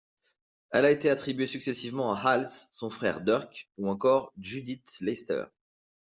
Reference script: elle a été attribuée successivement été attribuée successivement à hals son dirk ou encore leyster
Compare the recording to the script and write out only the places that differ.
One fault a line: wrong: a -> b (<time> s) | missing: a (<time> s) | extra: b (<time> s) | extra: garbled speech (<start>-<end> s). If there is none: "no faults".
missing: été attribuée successivement (2.1 s)
extra: frère (2.9 s)
extra: judith (4.4 s)